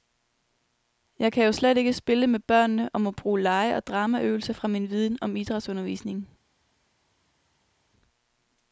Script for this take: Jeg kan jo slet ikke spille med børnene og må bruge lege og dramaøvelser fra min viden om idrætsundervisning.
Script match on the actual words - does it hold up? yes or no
yes